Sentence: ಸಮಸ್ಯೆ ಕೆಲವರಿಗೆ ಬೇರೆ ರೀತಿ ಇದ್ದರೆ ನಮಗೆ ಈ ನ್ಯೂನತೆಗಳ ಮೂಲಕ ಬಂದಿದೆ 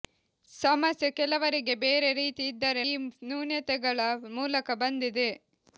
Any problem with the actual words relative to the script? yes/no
yes